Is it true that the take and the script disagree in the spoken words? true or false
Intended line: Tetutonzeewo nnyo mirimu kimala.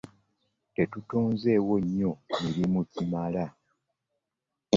false